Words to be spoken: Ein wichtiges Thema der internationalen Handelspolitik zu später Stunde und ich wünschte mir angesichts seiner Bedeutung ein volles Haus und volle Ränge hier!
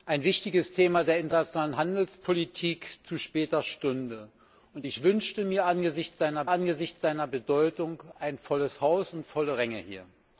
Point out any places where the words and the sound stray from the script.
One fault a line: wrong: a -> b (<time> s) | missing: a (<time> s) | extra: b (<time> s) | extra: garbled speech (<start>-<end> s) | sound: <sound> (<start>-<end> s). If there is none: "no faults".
extra: angesichts seiner (6.5 s)